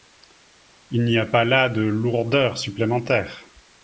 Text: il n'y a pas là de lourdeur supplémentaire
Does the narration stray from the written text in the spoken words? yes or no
no